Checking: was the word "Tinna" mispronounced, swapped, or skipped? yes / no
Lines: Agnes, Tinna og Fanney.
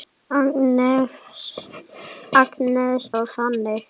yes